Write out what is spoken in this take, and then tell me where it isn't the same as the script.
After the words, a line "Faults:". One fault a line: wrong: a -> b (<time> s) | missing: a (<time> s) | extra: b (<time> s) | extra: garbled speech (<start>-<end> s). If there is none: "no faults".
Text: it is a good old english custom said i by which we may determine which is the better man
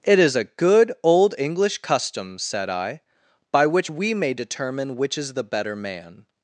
it is a good old english custom said i by which we may determine which is the better man
Faults:
no faults